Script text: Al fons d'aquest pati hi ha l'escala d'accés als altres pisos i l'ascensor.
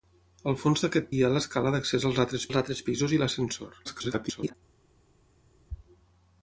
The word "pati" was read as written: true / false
false